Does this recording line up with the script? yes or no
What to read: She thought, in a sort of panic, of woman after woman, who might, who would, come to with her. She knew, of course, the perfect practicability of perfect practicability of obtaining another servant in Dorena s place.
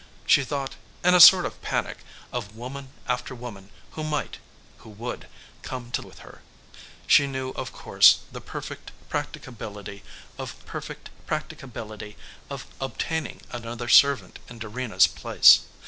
yes